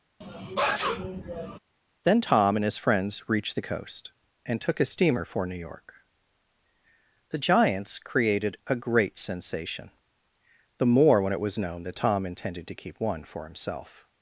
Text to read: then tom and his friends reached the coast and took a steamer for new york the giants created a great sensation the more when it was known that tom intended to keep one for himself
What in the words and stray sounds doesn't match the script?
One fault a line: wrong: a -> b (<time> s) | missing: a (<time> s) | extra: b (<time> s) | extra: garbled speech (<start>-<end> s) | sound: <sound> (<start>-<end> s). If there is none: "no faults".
sound: sneeze (0.2-1.6 s)